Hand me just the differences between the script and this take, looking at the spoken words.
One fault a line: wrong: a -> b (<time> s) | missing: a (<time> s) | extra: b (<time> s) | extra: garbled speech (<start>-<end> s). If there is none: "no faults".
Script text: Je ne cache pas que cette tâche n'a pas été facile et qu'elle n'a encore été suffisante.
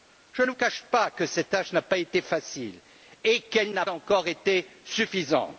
no faults